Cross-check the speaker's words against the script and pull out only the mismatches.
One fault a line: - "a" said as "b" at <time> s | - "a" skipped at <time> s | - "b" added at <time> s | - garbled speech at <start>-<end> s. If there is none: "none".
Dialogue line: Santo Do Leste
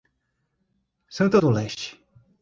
none